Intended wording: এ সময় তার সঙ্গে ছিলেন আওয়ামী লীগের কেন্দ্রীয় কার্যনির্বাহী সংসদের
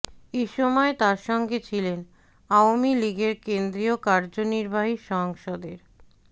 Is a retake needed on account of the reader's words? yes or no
no